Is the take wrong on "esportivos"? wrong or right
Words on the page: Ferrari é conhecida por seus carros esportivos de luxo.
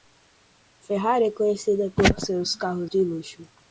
wrong